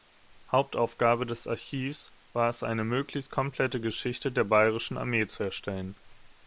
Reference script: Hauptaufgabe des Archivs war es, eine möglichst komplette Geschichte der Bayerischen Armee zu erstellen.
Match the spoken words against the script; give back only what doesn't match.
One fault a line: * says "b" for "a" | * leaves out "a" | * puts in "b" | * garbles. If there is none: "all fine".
all fine